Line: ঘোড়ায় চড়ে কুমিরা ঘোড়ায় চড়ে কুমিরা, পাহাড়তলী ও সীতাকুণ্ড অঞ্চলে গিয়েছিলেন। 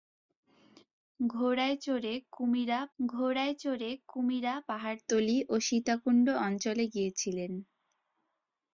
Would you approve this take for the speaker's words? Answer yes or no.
yes